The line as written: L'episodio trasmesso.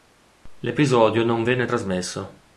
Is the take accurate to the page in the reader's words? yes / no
no